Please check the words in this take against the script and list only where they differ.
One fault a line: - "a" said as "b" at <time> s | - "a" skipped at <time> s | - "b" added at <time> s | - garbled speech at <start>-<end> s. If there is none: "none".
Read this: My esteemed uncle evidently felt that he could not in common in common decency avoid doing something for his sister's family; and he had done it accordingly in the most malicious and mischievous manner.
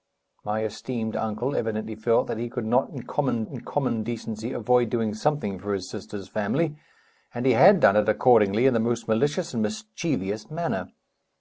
none